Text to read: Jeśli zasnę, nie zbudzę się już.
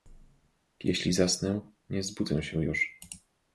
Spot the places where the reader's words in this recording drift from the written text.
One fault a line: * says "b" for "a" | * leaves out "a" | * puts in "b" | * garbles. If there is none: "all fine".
all fine